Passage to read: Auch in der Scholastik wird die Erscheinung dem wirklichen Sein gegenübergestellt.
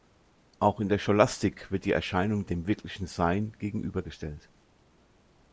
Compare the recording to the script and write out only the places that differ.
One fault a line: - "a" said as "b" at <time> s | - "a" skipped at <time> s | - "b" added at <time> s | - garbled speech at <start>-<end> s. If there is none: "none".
none